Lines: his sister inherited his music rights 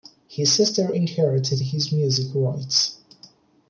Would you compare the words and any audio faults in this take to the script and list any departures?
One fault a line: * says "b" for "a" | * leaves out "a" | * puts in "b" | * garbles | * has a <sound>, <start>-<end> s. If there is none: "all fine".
all fine